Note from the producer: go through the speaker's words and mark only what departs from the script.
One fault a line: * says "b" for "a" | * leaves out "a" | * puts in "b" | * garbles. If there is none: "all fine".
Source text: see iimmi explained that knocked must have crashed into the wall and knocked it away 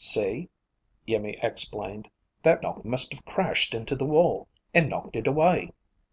all fine